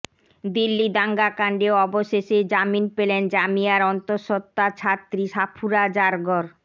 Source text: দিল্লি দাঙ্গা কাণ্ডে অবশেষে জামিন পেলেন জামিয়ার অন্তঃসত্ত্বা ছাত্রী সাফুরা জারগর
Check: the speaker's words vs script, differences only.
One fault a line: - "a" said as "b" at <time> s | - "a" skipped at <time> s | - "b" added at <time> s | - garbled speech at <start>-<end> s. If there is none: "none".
none